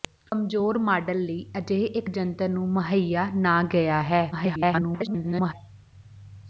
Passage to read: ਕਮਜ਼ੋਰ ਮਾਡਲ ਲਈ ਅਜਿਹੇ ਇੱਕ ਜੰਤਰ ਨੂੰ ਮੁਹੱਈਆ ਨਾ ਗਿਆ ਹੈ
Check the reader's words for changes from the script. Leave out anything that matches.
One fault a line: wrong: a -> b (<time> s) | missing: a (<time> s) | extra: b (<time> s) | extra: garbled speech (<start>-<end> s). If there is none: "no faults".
extra: garbled speech (4.3-5.5 s)